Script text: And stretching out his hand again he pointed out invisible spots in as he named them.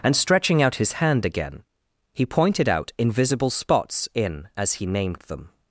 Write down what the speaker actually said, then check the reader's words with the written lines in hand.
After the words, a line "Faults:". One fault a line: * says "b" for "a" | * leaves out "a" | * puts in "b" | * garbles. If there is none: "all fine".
And stretching out his hand again he pointed out invisible spots in as he named them.
Faults:
all fine